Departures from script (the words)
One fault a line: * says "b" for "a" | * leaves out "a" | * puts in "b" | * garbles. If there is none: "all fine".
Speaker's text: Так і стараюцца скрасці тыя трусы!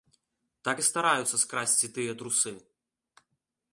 all fine